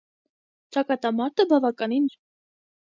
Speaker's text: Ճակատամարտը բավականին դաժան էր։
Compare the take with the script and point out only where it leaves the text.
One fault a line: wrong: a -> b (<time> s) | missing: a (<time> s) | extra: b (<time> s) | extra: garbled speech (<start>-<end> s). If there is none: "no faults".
missing: դաժան (2.1 s)